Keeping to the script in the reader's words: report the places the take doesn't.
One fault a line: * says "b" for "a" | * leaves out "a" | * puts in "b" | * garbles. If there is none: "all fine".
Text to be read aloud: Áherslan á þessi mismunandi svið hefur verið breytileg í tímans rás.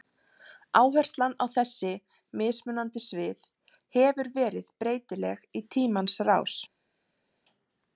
all fine